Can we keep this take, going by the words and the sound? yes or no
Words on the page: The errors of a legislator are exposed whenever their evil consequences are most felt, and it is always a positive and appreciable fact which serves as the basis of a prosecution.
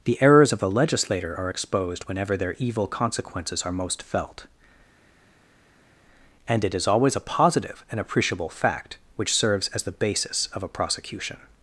yes